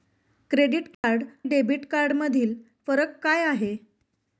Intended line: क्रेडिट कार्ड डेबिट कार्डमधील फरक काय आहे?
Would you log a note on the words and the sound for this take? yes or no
yes